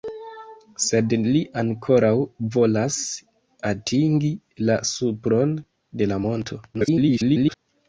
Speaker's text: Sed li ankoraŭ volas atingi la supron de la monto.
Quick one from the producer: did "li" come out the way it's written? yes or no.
yes